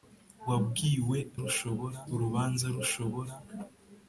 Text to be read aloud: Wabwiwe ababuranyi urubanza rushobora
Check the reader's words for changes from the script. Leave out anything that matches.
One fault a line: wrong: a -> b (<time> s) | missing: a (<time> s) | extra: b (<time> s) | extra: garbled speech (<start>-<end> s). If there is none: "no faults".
wrong: ababuranyi -> rushobora (1.4 s)